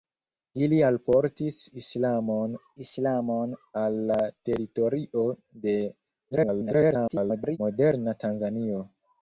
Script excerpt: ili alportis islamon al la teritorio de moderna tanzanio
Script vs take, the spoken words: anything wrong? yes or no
yes